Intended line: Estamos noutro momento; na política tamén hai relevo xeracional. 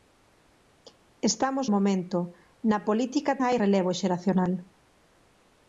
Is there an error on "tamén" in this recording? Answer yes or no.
yes